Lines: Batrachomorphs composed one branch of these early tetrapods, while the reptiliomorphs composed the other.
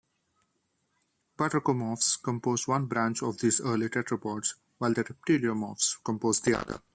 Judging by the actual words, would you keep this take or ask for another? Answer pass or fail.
pass